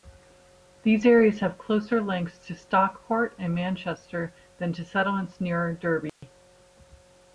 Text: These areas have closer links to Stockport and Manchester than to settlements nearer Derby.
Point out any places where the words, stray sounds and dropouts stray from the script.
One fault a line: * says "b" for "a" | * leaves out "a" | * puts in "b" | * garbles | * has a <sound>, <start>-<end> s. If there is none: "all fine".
* has a dropout, 6.1-6.2 s